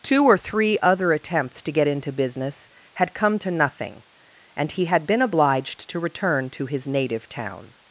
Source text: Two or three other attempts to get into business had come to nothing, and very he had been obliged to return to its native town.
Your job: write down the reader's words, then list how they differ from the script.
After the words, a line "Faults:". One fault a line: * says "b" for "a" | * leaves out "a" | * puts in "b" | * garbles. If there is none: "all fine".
Two or three other attempts to get into business had come to nothing, and he had been obliged to return to his native town.
Faults:
* leaves out "very"
* says "his" for "its"